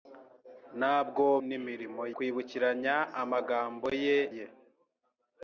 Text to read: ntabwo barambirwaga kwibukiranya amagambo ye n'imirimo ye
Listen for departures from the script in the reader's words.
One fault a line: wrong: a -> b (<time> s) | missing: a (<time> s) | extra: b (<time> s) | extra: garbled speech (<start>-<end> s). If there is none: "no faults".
wrong: barambirwaga -> n'imirimo (1.5 s)
missing: n'imirimo (4.2 s)